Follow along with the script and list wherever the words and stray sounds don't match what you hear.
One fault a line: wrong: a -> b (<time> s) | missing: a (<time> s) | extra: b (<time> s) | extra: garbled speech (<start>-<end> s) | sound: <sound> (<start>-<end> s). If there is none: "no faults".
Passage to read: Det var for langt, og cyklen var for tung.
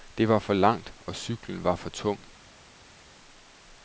no faults